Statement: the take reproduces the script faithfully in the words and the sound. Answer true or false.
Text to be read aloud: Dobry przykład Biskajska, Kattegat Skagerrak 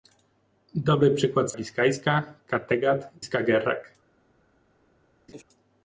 false